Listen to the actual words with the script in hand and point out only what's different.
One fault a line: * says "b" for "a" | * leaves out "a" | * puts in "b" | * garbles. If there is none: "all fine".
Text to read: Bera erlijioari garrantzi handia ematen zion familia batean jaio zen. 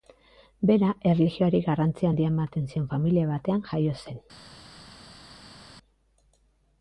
all fine